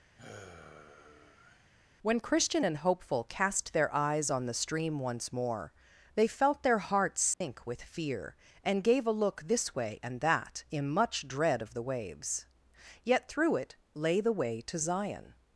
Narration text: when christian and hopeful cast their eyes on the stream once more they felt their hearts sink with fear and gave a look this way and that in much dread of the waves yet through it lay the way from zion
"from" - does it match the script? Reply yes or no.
no